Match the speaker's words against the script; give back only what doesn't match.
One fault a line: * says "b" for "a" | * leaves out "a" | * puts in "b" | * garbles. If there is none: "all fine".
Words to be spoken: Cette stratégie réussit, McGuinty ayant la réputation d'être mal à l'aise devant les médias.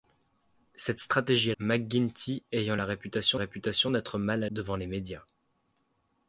* leaves out "réussit"
* puts in "réputation"
* leaves out "l'aise"